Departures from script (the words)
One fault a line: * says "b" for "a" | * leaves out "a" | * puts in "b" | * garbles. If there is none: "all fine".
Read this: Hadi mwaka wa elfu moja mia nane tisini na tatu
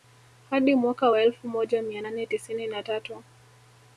all fine